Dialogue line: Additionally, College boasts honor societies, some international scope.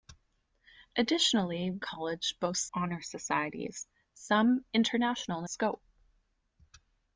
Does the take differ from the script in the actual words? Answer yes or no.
no